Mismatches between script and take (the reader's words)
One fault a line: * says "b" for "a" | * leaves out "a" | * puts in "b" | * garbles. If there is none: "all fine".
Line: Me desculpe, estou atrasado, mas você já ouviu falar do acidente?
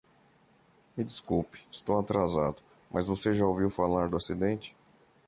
all fine